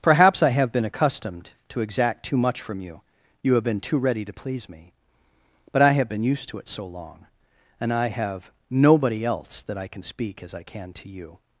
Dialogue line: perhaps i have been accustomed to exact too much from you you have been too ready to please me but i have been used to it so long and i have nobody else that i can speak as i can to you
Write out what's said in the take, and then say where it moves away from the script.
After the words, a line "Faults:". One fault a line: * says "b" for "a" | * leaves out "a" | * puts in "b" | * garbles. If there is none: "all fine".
perhaps i have been accustomed to exact too much from you you have been too ready to please me but i have been used to it so long and i have nobody else that i can speak as i can to you
Faults:
all fine